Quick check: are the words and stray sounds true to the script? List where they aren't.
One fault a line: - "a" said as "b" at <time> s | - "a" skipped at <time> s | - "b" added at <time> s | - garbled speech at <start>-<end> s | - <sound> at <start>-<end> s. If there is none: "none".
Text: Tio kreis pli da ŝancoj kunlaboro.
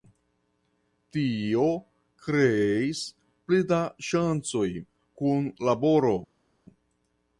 none